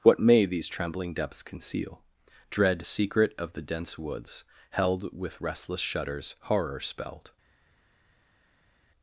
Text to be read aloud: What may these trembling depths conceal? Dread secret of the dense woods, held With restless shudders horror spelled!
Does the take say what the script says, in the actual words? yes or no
yes